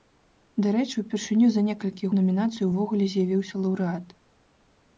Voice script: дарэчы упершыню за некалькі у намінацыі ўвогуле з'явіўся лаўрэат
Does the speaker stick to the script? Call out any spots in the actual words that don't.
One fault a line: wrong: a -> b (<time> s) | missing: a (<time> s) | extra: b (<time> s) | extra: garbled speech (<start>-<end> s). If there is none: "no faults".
no faults